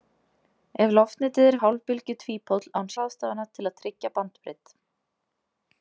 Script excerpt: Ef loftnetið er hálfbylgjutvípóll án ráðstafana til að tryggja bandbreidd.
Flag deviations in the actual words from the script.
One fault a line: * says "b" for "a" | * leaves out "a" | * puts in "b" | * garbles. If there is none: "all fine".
all fine